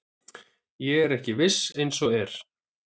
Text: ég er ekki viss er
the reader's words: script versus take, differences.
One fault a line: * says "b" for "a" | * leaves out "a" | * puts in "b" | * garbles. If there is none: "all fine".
* puts in "eins og"